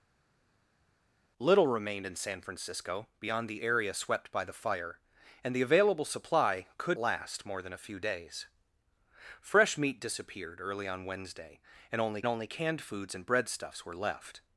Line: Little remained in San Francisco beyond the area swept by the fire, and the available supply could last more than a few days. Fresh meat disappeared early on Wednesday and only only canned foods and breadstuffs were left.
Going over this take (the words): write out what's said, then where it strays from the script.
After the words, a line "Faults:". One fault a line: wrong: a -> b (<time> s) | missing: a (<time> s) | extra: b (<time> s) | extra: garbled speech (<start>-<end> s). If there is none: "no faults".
Little remained in San Francisco beyond the area swept by the fire, and the available supply could last more than a few days. Fresh meat disappeared early on Wednesday and only only canned foods and breadstuffs were left.
Faults:
no faults